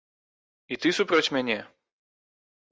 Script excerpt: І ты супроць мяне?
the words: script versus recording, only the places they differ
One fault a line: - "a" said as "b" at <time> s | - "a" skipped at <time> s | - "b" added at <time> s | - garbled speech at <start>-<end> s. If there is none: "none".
none